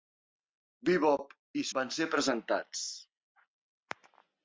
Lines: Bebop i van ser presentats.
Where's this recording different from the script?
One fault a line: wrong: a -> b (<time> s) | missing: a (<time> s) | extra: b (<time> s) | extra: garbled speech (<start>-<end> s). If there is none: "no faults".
no faults